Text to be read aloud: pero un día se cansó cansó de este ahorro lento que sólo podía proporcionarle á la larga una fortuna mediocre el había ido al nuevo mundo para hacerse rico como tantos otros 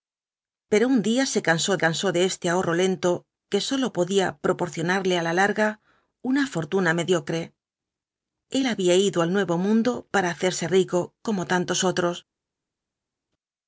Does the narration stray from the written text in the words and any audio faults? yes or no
no